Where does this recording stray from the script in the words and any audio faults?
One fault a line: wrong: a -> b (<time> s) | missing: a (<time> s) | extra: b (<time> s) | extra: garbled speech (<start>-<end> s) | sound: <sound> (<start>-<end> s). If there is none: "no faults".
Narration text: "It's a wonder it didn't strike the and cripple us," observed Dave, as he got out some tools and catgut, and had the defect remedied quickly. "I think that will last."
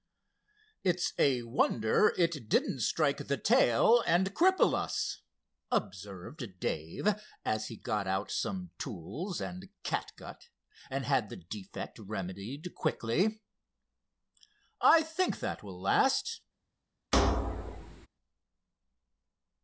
extra: tail (3.4 s)
sound: thud (17.1-18.1 s)